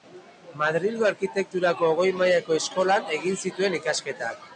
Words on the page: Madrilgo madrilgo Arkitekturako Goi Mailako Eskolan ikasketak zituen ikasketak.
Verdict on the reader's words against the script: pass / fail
fail